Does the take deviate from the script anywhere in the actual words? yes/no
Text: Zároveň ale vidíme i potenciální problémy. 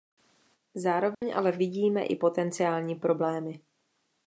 no